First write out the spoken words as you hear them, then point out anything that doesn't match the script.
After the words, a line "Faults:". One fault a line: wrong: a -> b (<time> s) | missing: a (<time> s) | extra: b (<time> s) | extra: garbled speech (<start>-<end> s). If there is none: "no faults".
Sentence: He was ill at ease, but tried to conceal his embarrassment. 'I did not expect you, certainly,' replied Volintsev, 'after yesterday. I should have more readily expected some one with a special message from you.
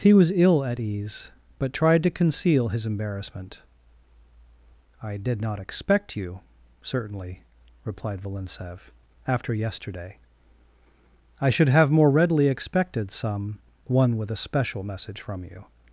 He was ill at ease, but tried to conceal his embarrassment. 'I did not expect you, certainly,' replied Volintsev, 'after yesterday. I should have more readily expected some one with a special message from you.
Faults:
no faults